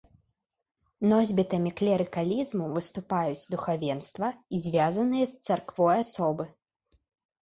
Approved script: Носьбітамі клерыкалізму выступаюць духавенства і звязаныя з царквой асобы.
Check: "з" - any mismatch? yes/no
no